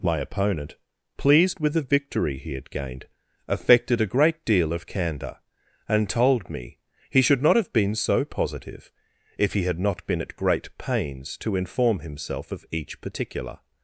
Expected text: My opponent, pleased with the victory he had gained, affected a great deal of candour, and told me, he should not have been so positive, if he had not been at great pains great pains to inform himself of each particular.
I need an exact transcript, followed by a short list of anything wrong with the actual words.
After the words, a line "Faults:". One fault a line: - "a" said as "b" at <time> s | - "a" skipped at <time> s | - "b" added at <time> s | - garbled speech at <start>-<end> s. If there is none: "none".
My opponent, pleased with the victory he had gained, affected a great deal of candour, and told me, he should not have been so positive, if he had not been at great pains to inform himself of each particular.
Faults:
- "great pains" skipped at 11.4 s